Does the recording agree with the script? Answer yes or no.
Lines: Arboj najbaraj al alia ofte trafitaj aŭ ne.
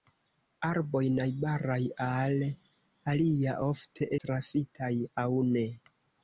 yes